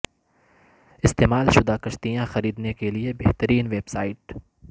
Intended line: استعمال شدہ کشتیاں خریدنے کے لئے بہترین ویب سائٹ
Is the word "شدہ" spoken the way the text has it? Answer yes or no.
yes